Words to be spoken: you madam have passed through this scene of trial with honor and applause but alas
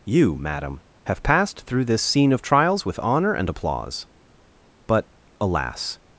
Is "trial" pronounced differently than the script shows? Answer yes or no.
yes